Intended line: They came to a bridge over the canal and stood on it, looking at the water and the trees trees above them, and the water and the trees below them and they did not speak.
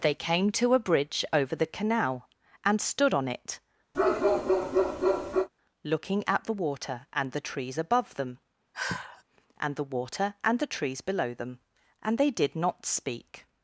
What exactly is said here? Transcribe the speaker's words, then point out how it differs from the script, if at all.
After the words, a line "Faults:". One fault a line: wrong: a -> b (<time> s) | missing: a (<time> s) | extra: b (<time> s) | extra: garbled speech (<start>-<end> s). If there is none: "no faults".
They came to a bridge over the canal and stood on it, looking at the water and the trees above them, and the water and the trees below them and they did not speak.
Faults:
missing: trees (7.8 s)